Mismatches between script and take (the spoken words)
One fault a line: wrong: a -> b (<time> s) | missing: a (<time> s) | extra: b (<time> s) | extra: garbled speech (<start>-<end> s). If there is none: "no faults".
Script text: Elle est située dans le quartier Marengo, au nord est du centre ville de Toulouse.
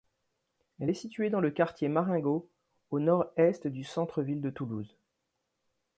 no faults